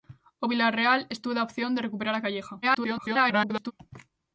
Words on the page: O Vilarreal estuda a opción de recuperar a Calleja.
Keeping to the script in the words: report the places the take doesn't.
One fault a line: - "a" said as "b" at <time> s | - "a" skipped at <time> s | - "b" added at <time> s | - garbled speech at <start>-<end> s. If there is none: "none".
- garbled speech at 2.6-3.7 s